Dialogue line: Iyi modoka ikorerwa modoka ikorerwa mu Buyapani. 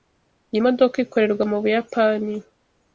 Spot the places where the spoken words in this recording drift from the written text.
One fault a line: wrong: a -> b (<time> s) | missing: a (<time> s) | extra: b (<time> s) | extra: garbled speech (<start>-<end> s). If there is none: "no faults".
missing: modoka ikorerwa (1.4 s)